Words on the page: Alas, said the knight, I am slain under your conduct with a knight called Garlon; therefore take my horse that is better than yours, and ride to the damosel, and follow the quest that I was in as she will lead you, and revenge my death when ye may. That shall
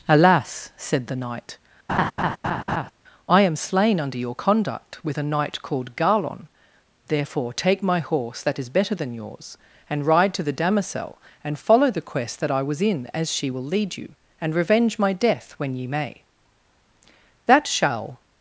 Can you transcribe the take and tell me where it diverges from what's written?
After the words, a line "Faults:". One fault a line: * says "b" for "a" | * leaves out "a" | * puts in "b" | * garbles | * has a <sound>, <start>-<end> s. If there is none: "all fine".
Alas, said the knight, I am slain under your conduct with a knight called Garlon; therefore take my horse that is better than yours, and ride to the damosel, and follow the quest that I was in as she will lead you, and revenge my death when ye may. That shall
Faults:
* has a laugh, 1.9-2.9 s